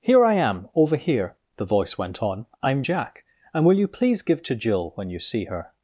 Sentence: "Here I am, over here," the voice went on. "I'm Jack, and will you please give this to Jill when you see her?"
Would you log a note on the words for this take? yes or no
yes